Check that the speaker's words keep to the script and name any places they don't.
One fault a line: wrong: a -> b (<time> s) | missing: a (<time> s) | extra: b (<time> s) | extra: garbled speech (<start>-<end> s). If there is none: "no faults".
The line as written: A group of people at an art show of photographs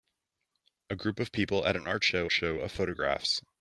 extra: show (2.3 s)